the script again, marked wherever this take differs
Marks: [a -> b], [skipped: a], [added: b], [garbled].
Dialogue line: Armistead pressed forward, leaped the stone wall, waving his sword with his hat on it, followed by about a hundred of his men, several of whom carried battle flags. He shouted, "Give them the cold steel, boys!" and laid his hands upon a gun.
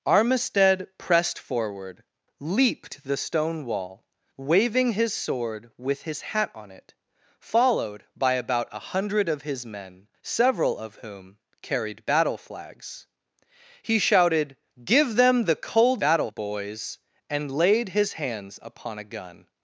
Armistead pressed forward, leaped the stone wall, waving his sword with his hat on it, followed by about a hundred of his men, several of whom carried battle flags. He shouted, "Give them the cold [steel, -> battle] boys!" and laid his hands upon a gun.